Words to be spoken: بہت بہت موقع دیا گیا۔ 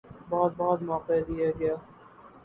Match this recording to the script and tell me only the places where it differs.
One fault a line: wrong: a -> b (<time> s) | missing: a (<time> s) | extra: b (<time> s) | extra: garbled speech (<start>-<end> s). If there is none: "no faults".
no faults